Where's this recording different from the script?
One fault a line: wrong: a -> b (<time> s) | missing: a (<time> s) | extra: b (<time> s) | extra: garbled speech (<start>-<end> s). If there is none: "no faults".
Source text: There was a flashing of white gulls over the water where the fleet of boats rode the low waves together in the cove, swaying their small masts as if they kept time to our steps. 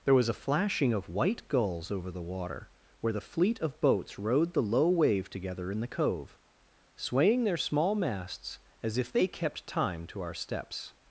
wrong: waves -> wave (4.9 s)